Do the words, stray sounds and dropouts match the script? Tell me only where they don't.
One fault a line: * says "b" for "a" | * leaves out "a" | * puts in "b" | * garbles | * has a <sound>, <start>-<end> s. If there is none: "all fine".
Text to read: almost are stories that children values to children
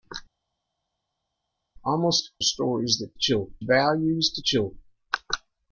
all fine